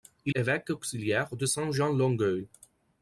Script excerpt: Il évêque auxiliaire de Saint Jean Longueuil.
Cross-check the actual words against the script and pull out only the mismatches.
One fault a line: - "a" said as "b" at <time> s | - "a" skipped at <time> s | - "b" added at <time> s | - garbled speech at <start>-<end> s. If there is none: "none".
none